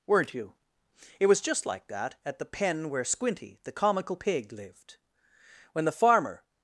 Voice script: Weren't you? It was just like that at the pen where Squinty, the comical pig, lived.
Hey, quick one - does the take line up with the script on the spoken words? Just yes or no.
no